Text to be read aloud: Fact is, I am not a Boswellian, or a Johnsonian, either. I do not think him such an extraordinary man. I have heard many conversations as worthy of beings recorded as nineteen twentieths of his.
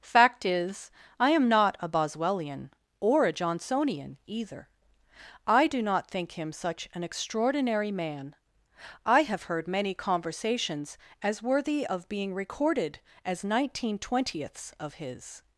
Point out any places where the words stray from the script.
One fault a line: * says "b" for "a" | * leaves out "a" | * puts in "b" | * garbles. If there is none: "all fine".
* says "being" for "beings"